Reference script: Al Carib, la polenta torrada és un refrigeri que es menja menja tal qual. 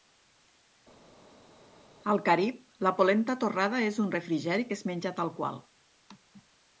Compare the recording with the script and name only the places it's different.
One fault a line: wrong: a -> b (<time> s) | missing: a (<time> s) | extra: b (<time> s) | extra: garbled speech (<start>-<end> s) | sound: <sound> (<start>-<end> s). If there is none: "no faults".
missing: menja (5.1 s)